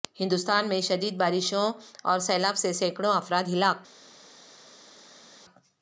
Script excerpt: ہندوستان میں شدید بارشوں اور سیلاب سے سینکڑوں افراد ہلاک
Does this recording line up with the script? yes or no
yes